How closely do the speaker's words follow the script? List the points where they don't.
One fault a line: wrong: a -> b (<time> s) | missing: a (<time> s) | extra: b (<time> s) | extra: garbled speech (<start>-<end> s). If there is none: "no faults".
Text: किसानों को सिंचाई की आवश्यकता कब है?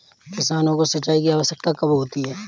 extra: होती (1.9 s)